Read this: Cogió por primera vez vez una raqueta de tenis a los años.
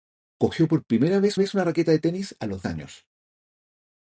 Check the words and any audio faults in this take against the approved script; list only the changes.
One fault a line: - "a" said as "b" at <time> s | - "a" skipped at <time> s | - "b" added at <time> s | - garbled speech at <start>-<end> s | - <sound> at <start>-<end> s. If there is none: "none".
none